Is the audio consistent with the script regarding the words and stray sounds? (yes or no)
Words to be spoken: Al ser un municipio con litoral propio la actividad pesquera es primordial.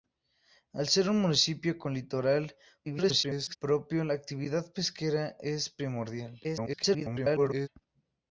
no